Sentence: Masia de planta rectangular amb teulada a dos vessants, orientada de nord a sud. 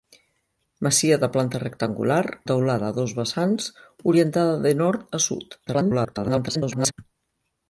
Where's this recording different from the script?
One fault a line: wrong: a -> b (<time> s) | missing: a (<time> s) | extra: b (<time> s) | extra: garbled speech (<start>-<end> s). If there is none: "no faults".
missing: amb (2.2 s)
extra: garbled speech (5.7-6.9 s)